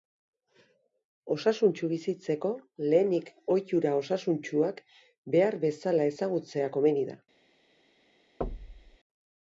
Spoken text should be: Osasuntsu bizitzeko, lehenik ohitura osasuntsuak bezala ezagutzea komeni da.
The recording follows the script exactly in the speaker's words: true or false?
false